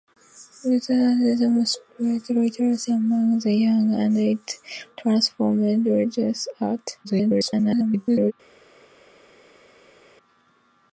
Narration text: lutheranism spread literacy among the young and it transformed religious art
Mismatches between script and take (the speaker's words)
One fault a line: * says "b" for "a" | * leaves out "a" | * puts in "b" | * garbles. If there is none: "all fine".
* garbles